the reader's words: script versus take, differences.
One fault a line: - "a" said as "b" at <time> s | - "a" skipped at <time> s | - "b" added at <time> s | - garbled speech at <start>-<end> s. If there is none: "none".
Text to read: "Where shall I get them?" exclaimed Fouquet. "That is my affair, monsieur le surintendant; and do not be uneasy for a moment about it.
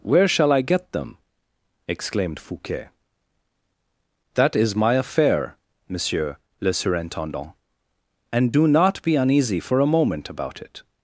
none